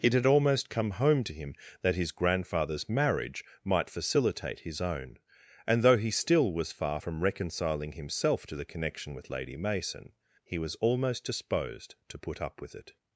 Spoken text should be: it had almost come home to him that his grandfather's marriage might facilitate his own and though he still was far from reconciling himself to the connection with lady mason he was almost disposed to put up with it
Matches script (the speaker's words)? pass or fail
pass